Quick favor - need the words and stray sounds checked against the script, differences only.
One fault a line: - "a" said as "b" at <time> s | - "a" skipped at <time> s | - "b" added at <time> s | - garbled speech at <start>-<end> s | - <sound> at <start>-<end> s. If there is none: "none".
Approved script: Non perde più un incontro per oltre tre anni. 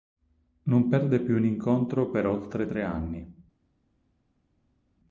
none